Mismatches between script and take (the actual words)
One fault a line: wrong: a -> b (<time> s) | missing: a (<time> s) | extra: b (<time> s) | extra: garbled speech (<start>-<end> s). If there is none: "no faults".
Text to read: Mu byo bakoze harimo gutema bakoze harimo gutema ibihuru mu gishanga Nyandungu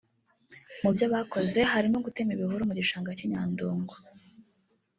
missing: bakoze harimo gutema (2.3 s)
extra: cy'i (3.2 s)